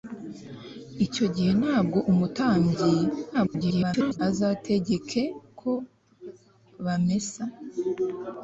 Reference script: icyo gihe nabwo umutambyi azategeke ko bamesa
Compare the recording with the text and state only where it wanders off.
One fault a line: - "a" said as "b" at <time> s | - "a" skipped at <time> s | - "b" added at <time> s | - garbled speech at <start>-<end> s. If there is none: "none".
- garbled speech at 3.3-4.2 s